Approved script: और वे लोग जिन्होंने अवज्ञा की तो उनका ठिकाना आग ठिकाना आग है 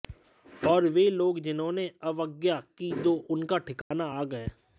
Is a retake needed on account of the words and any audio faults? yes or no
yes